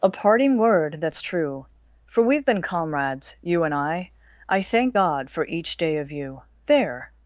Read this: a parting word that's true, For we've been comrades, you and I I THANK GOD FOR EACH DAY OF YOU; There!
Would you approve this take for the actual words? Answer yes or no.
yes